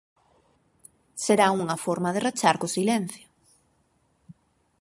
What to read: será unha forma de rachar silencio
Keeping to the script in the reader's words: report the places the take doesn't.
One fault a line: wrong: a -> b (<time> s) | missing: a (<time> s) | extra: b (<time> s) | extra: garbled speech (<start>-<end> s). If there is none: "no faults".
extra: co (2.6 s)